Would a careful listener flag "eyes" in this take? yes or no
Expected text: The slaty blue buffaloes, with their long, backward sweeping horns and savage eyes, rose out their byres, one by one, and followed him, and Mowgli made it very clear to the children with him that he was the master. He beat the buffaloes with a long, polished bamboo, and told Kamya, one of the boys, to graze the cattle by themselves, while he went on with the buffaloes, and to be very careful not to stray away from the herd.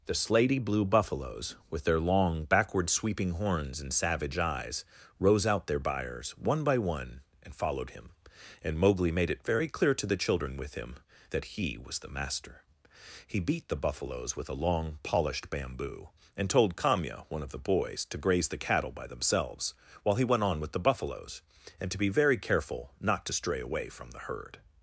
no